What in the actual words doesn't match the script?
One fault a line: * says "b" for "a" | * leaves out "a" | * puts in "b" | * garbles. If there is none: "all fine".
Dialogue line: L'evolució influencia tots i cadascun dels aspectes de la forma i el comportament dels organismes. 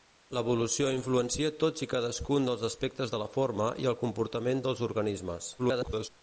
* garbles